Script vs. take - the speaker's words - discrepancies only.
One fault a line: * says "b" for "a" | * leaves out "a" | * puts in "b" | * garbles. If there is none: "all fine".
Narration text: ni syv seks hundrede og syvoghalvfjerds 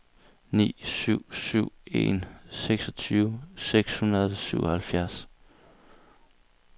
* puts in "syv en seksogtyve"